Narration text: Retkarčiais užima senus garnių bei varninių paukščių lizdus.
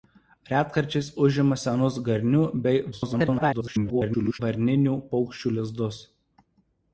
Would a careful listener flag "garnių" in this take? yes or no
no